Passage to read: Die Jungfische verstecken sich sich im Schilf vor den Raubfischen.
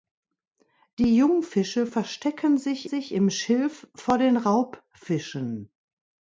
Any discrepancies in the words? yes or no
no